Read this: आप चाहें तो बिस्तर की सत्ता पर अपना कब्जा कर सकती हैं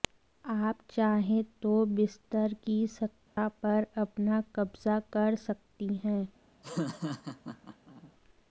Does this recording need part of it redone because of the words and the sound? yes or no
yes